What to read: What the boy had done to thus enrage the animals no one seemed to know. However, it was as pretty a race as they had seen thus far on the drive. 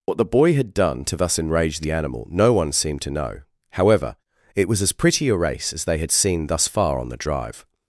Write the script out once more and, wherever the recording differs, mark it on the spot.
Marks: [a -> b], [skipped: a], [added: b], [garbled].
What the boy had done to thus enrage the [animals -> animal] no one seemed to know. However, it was as pretty a race as they had seen thus far on the drive.